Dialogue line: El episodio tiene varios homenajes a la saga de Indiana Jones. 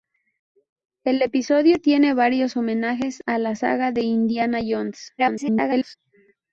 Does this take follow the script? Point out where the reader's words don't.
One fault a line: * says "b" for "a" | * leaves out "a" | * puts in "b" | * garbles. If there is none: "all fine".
* garbles